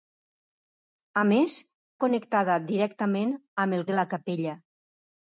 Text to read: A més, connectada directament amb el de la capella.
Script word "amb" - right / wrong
right